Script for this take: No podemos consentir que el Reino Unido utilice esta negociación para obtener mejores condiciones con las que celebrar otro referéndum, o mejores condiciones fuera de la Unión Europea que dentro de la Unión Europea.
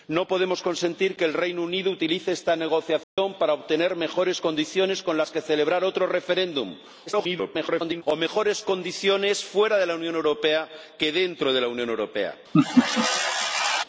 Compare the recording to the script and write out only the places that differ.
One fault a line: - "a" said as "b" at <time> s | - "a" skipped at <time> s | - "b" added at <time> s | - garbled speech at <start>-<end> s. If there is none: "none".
- garbled speech at 7.1-8.0 s